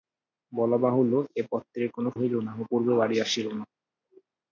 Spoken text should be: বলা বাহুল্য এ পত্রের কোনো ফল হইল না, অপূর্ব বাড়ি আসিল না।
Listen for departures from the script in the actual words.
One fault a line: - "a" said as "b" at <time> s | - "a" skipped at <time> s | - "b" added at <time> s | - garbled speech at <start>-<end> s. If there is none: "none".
- "ফল" skipped at 2.1 s